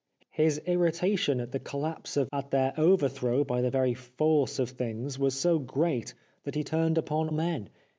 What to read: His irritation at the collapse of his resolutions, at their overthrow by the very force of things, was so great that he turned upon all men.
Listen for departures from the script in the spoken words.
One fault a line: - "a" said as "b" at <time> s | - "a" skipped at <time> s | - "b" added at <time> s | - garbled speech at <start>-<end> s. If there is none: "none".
- "his resolutions" skipped at 2.3 s
- "all" skipped at 7.3 s